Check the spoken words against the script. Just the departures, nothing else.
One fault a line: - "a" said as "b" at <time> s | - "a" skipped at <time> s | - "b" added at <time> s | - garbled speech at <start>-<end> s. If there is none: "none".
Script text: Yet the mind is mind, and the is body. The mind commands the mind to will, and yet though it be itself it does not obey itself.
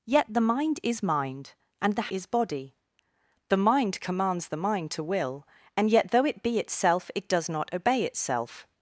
none